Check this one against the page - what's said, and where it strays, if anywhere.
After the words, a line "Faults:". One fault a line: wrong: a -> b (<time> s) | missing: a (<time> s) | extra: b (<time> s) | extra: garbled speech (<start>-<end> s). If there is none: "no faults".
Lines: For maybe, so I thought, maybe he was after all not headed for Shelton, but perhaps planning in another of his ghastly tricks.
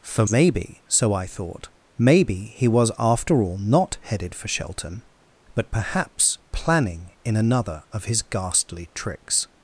For maybe, so I thought, maybe he was after all not headed for Shelton, but perhaps planning in another of his ghastly tricks.
Faults:
no faults